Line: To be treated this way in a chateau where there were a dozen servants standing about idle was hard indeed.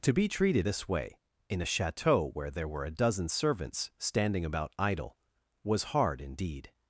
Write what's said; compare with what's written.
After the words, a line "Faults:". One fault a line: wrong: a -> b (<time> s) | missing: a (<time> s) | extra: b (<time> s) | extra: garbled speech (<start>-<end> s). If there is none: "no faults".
To be treated this way in a chateau where there were a dozen servants standing about idle was hard indeed.
Faults:
no faults